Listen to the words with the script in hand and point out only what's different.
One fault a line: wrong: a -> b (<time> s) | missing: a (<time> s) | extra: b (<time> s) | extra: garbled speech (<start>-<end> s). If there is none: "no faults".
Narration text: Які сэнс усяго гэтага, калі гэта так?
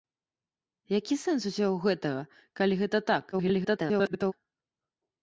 extra: garbled speech (3.3-4.3 s)